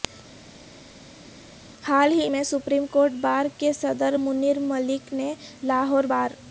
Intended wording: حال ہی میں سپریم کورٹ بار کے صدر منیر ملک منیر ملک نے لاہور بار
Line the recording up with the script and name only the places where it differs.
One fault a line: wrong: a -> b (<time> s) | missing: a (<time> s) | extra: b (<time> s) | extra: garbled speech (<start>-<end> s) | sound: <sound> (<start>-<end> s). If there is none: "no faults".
missing: منیر ملک (5.1 s)